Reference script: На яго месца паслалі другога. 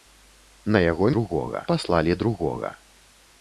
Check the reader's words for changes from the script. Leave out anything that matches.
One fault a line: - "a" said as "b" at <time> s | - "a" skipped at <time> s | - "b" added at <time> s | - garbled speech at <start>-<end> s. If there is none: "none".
- "месца" said as "другога" at 1.1 s